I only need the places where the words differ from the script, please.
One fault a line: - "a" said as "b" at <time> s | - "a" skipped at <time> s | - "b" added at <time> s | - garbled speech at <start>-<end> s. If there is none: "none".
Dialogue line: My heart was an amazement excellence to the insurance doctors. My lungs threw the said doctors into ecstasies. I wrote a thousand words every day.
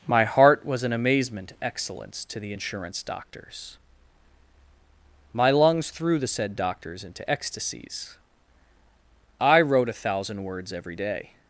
none